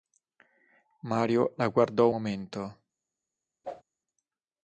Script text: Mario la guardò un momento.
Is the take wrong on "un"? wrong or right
wrong